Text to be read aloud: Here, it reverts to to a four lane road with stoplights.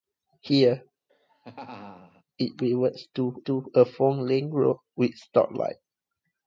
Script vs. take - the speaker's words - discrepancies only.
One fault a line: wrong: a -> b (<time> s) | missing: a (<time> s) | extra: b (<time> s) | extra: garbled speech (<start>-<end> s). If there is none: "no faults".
no faults